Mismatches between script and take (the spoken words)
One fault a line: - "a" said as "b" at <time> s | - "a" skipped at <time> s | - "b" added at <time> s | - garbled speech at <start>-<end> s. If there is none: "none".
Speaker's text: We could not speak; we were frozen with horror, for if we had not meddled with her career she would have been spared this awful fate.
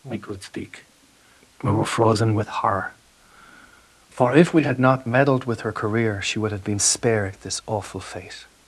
- "not" skipped at 0.4 s